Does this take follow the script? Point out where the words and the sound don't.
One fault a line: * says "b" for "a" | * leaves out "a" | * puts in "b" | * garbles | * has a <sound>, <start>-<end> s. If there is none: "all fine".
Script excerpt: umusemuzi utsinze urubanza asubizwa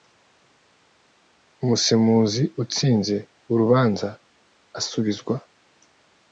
all fine